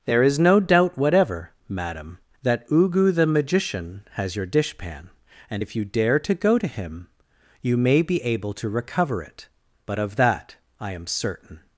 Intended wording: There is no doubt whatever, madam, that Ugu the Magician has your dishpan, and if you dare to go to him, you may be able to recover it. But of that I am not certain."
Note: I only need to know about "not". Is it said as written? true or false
false